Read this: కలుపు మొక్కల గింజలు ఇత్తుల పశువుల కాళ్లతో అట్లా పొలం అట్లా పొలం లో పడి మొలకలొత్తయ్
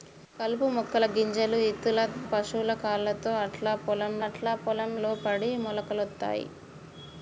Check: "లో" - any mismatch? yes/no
no